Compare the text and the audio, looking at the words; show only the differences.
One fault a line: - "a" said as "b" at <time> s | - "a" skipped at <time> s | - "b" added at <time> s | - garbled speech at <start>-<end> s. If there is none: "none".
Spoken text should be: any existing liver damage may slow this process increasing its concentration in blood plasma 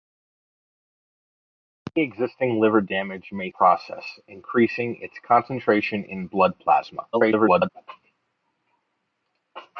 - "slow this" skipped at 3.5 s
- garbled speech at 7.1-7.7 s